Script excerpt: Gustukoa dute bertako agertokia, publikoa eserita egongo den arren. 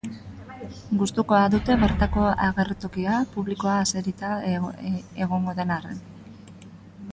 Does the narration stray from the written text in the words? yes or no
no